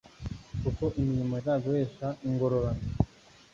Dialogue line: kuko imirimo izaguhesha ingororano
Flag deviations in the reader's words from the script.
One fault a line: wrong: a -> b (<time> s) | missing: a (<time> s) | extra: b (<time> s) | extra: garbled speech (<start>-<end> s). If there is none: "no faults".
no faults